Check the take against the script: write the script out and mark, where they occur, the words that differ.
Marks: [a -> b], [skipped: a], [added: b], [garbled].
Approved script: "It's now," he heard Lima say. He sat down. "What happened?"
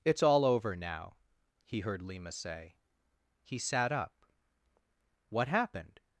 "It's [added: all over] now," he heard Lima say. He sat [down. -> up] "What happened?"